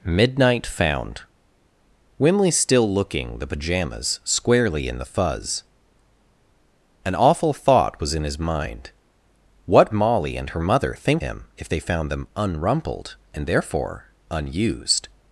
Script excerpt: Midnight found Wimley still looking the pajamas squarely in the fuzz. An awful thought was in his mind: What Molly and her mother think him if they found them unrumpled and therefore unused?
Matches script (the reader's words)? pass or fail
pass